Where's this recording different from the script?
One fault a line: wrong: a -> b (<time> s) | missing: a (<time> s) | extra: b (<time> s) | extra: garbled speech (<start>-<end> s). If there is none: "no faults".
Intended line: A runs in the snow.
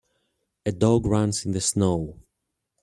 extra: dog (0.7 s)